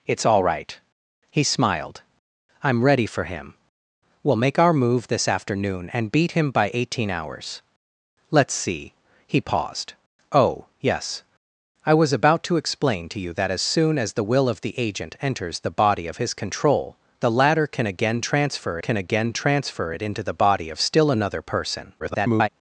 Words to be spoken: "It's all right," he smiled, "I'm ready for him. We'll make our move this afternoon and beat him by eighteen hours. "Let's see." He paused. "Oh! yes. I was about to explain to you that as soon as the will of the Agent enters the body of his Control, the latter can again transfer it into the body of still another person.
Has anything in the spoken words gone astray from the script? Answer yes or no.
yes